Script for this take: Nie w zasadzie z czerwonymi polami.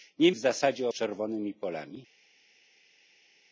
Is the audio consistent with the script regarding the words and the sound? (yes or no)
yes